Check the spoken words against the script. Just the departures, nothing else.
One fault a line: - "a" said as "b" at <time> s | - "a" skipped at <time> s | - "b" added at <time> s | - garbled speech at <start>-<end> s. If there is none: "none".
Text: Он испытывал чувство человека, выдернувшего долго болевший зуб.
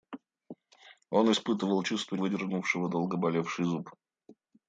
- "человека" skipped at 2.2 s